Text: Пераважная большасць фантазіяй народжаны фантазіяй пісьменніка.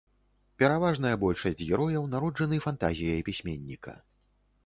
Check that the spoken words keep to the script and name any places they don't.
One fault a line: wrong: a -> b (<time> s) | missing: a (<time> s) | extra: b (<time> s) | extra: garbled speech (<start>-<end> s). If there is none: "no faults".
wrong: фантазіяй -> герояў (1.7 s)